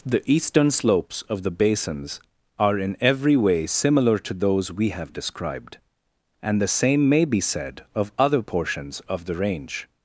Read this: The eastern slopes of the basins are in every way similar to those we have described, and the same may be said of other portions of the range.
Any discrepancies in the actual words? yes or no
no